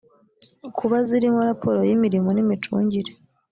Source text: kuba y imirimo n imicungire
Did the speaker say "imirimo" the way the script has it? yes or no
yes